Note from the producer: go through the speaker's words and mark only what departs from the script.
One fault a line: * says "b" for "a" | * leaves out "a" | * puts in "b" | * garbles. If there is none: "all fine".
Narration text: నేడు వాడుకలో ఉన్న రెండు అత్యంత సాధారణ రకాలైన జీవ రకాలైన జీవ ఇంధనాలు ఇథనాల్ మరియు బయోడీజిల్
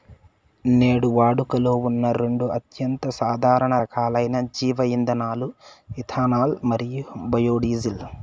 * leaves out "రకాలైన జీవ"